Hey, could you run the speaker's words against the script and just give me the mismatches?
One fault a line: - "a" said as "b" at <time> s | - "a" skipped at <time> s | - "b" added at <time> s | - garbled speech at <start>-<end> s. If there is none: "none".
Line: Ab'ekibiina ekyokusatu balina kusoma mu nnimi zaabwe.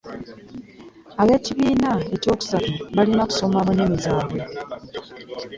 none